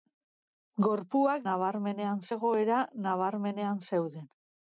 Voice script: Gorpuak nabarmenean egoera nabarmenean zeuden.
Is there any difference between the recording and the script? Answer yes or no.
no